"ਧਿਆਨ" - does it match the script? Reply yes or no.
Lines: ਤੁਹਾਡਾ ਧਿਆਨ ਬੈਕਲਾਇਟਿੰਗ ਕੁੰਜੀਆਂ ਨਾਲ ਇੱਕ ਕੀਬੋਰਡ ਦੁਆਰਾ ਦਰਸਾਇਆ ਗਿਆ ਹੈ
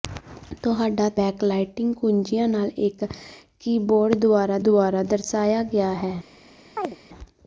no